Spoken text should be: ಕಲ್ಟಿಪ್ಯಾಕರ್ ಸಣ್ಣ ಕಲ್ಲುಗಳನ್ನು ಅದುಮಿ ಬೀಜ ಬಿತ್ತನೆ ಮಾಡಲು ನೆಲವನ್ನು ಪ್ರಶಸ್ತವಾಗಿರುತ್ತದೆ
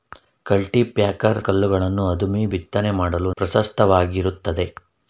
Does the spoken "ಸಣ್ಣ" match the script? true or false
false